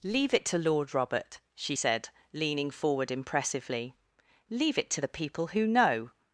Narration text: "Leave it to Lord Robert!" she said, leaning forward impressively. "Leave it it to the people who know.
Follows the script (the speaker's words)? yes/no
no